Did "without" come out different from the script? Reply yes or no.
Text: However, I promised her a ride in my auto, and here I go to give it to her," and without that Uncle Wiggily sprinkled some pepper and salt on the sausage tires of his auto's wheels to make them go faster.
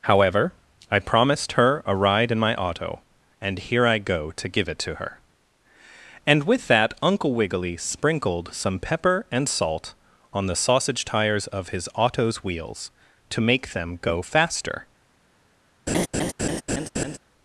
yes